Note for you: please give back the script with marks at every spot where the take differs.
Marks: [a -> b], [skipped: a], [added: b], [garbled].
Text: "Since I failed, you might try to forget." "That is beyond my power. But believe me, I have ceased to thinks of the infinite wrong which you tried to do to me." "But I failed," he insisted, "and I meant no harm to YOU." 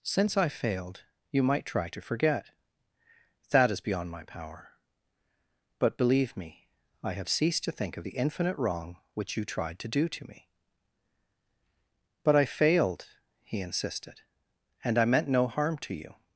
"Since I failed, you might try to forget." "That is beyond my power. But believe me, I have ceased to [thinks -> think] of the infinite wrong which you tried to do to me." "But I failed," he insisted, "and I meant no harm to YOU."